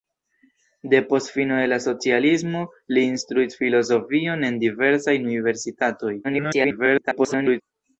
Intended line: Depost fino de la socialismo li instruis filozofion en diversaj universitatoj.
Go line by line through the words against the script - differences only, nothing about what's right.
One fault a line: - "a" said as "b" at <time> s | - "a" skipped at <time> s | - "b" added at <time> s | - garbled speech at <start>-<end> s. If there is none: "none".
- garbled speech at 6.2-7.6 s